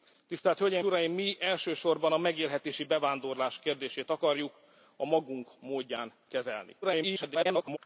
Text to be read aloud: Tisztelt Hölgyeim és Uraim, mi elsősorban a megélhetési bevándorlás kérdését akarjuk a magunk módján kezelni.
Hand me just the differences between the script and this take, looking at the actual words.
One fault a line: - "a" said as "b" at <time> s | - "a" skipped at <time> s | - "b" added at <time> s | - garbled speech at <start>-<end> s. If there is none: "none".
- "és" skipped at 0.8 s
- garbled speech at 6.8-7.8 s